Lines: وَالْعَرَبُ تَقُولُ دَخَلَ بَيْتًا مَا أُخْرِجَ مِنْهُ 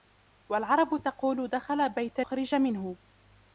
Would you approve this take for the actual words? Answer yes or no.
no